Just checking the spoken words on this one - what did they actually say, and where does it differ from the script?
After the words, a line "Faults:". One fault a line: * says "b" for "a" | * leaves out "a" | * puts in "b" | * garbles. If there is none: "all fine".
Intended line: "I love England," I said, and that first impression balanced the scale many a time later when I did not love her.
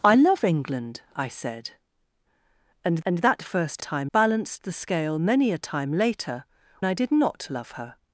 "I love England," I said, and and that first time balanced the scale many a time later I did not love her.
Faults:
* puts in "and"
* says "time" for "impression"
* leaves out "when"